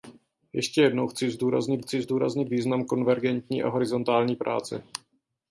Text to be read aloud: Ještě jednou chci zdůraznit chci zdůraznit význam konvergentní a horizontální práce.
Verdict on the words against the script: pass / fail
pass